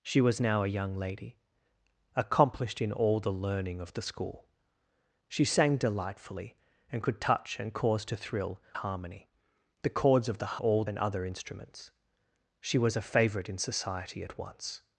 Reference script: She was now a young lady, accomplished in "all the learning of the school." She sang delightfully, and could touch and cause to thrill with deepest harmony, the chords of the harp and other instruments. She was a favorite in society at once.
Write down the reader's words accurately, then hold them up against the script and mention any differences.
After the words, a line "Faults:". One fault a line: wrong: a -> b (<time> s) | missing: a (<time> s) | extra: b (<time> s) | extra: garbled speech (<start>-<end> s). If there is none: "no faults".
She was now a young lady, accomplished in "all the learning of the school." She sang delightfully, and could touch and cause to thrill harmony, the chords of the all and other instruments. She was a favorite in society at once.
Faults:
missing: with deepest (8.6 s)
wrong: harp -> all (10.6 s)